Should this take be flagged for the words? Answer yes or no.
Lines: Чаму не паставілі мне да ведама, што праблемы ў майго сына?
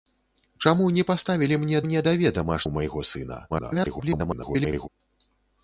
yes